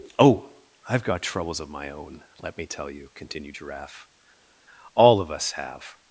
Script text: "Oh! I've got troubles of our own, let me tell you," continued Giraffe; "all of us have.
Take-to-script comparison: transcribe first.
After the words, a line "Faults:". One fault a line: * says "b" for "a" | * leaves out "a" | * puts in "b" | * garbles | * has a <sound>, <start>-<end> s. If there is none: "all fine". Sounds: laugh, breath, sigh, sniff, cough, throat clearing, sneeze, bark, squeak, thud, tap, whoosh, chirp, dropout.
"Oh! I've got troubles of my own, let me tell you," continued Giraffe; "all of us have.
Faults:
* says "my" for "our"